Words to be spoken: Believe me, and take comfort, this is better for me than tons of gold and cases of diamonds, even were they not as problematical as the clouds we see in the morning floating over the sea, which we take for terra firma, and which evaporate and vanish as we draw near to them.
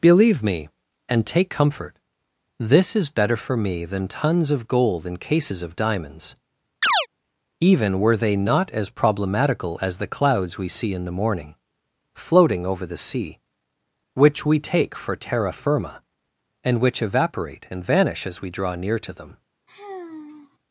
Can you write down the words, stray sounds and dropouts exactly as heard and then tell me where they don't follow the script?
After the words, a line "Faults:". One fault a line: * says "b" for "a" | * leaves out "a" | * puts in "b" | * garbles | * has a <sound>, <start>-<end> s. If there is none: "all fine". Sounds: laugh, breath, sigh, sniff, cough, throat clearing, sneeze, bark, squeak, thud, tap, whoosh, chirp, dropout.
Believe me, and take comfort, this is better for me than tons of gold and cases of diamonds, even were they not as problematical as the clouds we see in the morning floating over the sea, which we take for terra firma, and which evaporate and vanish as we draw near to them.
Faults:
* has a chirp, 6.8-7.1 s
* has a sigh, 19.7-20.6 s